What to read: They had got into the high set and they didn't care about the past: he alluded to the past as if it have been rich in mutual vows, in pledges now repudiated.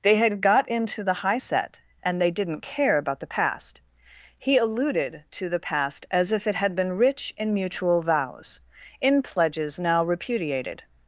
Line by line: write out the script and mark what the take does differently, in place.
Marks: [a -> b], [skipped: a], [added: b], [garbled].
They had got into the high set and they didn't care about the past: he alluded to the past as if it [have -> had] been rich in mutual vows, in pledges now repudiated.